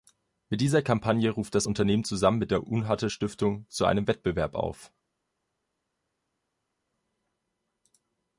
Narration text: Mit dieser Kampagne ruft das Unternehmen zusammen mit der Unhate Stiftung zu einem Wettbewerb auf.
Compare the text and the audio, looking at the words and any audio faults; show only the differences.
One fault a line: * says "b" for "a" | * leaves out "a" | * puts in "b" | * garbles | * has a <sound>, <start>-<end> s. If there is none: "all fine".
all fine